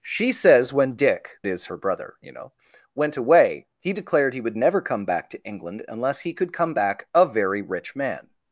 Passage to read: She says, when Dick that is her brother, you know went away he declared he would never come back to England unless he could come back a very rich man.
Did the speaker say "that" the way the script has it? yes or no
no